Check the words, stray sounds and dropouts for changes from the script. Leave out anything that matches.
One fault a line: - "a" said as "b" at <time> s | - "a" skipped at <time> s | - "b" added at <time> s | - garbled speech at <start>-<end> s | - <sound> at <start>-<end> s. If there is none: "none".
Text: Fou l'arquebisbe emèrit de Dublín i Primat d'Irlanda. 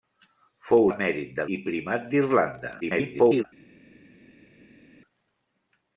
- "l'arquebisbe" skipped at 0.9 s
- "Dublín" skipped at 1.5 s
- garbled speech at 2.8-3.4 s